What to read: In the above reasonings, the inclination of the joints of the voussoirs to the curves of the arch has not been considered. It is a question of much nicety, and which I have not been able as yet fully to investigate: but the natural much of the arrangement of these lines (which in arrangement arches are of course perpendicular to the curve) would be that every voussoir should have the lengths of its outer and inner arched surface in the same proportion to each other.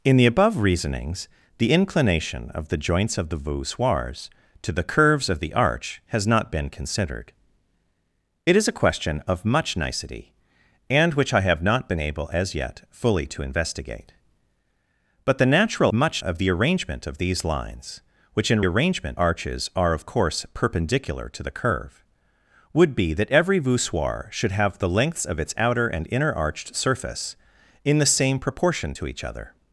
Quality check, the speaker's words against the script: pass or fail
pass